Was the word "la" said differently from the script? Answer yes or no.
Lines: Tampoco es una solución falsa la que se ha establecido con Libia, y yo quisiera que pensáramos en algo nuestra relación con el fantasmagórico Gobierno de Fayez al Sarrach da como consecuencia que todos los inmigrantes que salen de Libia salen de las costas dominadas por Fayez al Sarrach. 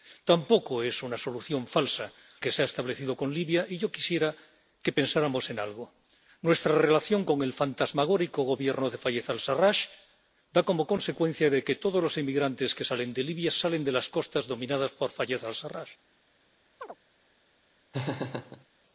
yes